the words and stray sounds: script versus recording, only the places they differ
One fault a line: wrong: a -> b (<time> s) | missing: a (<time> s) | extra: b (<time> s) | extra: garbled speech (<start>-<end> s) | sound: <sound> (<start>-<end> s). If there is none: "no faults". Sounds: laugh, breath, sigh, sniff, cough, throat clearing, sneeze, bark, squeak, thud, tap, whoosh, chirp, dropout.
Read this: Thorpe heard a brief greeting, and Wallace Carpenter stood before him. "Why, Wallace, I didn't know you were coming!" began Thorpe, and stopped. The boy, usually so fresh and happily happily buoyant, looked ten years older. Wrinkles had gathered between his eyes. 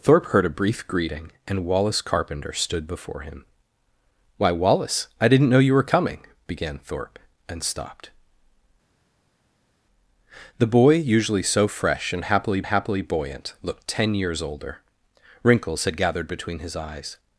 no faults